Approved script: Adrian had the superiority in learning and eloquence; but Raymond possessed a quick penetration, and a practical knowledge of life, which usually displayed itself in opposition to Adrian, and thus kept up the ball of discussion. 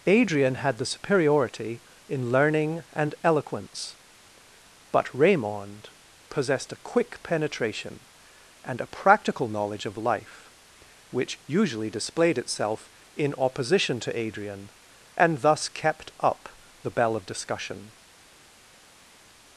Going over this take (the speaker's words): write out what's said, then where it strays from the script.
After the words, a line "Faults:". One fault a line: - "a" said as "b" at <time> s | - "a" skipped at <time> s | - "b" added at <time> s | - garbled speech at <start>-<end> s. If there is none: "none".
Adrian had the superiority in learning and eloquence; but Raymond possessed a quick penetration, and a practical knowledge of life, which usually displayed itself in opposition to Adrian, and thus kept up the bell of discussion.
Faults:
- "ball" said as "bell" at 16.9 s